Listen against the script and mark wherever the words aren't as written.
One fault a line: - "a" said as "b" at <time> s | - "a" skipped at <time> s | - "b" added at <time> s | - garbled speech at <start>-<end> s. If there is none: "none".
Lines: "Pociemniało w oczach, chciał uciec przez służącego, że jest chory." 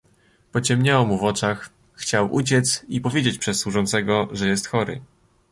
- "mu" added at 1.1 s
- "i powiedzieć" added at 2.9 s